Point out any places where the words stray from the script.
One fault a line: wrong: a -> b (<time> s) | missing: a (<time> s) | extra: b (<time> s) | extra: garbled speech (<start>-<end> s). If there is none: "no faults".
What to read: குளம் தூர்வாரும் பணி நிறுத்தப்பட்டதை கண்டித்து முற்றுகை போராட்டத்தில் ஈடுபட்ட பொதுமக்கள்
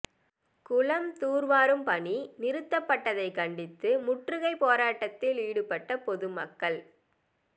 no faults